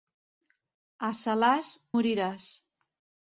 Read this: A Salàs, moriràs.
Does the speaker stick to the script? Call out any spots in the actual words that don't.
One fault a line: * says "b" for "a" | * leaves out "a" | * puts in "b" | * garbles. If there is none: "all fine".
all fine